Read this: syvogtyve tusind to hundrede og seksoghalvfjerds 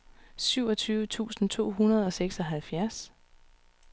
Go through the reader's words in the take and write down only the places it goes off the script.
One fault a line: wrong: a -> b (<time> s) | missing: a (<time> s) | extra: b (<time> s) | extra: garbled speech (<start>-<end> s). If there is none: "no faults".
no faults